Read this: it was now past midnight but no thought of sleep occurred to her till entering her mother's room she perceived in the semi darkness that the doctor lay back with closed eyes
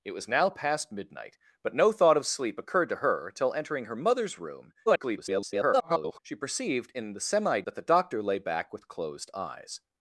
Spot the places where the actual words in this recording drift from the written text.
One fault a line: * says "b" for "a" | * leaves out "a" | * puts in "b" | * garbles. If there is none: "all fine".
* garbles
* leaves out "darkness"